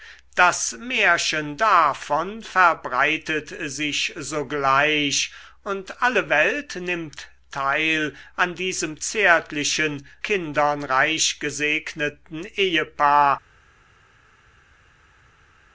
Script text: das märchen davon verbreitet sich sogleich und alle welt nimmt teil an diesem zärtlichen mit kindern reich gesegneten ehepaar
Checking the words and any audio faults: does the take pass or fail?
fail